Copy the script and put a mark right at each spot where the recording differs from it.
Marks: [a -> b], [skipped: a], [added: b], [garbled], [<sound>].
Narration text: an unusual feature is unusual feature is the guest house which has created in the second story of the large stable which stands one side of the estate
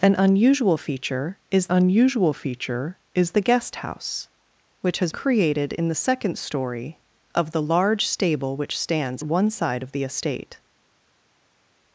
an unusual feature is unusual feature is the guest house which has created in the second story of the large stable which stands one side of the estate